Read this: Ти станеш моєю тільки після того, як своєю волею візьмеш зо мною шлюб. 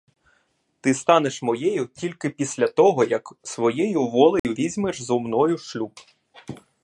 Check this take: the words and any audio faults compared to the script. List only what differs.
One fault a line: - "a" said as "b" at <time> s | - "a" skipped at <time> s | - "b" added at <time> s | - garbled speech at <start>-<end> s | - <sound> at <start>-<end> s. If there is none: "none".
- dropout at 4.4-4.4 s